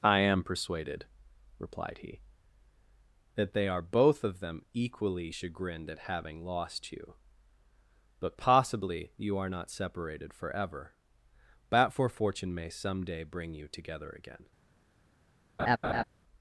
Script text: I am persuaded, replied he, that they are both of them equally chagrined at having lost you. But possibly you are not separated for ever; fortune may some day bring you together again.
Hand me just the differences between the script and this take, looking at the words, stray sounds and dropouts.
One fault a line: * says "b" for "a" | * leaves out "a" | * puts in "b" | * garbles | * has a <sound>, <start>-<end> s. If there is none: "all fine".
* puts in "forever but"
* leaves out "ever"
* has a laugh, 15.6-16.0 s